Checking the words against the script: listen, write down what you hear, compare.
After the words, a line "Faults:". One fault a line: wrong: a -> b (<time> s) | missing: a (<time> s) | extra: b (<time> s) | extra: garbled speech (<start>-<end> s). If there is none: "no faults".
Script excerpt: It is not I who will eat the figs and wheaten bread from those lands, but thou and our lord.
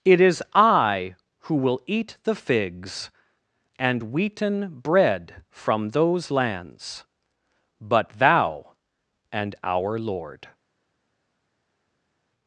It is I who will eat the figs and wheaten bread from those lands, but thou and our lord.
Faults:
missing: not (0.4 s)